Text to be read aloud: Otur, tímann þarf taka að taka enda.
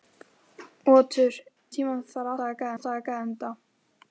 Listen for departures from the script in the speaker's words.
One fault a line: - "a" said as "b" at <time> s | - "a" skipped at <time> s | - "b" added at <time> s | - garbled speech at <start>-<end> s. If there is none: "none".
none